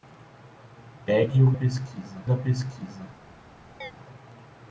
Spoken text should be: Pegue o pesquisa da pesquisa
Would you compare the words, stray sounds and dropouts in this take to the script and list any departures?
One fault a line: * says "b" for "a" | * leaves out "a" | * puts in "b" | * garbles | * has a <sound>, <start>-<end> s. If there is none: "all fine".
* has a chirp, 3.8-3.9 s